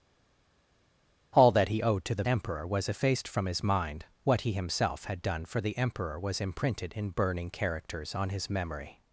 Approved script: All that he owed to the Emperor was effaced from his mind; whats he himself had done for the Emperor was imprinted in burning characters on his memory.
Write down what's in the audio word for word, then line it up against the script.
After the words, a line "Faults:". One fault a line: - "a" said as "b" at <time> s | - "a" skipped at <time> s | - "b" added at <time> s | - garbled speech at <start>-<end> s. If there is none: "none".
All that he owed to the Emperor was effaced from his mind; what he himself had done for the Emperor was imprinted in burning characters on his memory.
Faults:
- "whats" said as "what" at 4.2 s